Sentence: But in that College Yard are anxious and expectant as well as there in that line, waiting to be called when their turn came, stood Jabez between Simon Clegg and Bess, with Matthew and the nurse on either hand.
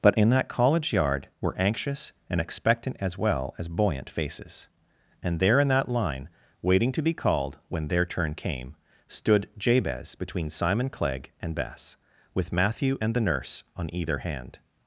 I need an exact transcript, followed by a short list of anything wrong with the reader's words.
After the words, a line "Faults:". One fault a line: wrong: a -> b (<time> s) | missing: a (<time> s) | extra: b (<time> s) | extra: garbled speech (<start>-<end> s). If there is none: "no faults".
But in that College Yard were anxious and expectant as well as buoyant faces. And there in that line, waiting to be called when their turn came, stood Jabez between Simon Clegg and Bess, with Matthew and the nurse on either hand.
Faults:
wrong: are -> were (1.4 s)
extra: buoyant faces And (3.7 s)